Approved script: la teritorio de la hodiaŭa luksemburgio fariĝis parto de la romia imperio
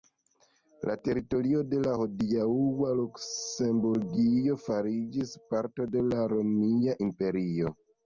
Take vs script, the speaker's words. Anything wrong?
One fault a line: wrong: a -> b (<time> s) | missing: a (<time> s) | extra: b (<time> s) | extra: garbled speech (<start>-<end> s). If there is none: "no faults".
no faults